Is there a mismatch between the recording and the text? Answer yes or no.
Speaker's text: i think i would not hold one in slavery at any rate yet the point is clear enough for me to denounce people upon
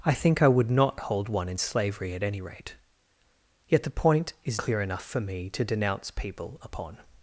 no